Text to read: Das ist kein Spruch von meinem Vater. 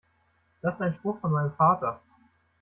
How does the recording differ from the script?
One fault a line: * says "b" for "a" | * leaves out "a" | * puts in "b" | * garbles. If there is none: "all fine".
* says "ein" for "kein"